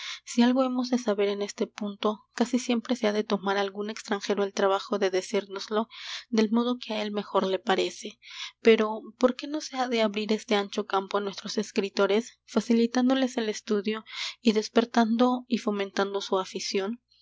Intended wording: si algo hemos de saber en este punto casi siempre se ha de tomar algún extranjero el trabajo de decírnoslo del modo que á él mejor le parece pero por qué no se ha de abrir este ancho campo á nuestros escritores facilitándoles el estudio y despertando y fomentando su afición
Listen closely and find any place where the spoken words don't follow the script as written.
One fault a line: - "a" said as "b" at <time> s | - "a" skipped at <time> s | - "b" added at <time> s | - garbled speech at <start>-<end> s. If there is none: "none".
none